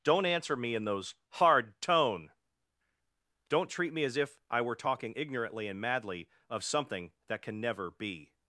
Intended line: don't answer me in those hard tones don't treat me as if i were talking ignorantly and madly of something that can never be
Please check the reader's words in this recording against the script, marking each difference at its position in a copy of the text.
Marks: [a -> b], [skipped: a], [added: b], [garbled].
don't answer me in those hard [tones -> tone] don't treat me as if i were talking ignorantly and madly of something that can never be